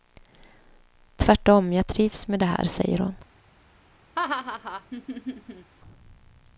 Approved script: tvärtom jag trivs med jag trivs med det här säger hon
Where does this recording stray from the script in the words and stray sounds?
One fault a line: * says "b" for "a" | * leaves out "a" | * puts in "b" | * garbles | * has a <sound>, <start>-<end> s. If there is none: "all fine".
* leaves out "jag trivs med"
* has a laugh, 4.2-5.7 s